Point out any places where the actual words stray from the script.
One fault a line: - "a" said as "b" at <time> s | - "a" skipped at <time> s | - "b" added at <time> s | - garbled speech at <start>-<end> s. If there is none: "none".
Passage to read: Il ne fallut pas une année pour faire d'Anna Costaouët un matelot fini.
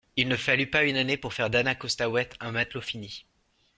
none